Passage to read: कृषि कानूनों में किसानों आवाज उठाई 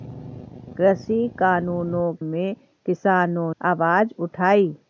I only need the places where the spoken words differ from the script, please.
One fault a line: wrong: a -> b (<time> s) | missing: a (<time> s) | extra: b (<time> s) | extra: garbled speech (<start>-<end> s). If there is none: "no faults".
no faults